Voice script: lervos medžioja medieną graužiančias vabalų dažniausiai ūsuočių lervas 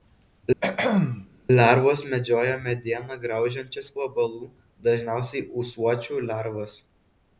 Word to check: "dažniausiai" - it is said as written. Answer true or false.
true